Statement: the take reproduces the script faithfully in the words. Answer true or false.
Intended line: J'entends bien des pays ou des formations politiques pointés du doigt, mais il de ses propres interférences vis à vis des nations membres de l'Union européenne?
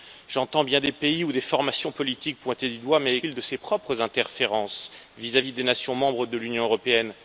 true